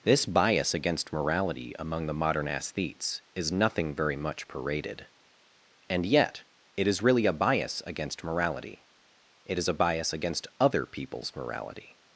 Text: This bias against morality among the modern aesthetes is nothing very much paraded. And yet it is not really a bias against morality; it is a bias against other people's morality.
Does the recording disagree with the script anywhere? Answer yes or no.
yes